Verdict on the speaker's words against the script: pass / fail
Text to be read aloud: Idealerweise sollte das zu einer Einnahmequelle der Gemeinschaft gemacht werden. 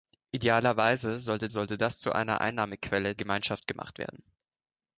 fail